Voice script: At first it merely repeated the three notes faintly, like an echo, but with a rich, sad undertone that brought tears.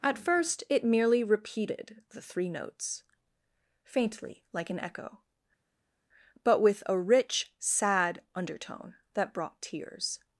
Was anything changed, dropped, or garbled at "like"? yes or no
no